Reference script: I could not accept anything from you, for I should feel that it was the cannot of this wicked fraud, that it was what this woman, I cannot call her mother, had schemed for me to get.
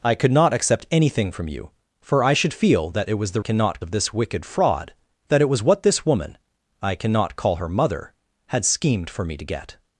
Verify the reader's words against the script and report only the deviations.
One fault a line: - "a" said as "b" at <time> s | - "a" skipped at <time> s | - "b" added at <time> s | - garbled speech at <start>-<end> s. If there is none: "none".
none